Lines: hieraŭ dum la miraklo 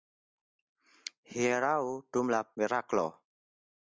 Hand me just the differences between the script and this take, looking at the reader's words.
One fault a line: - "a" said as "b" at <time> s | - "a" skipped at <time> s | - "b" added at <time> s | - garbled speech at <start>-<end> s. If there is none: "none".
none